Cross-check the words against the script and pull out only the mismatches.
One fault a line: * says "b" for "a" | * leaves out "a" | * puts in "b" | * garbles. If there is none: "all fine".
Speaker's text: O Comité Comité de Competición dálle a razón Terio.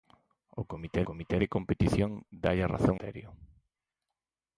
all fine